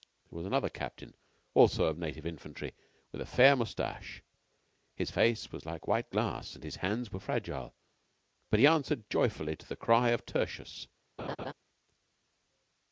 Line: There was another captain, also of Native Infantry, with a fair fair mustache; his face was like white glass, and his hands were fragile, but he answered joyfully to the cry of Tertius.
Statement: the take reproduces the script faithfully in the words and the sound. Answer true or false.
false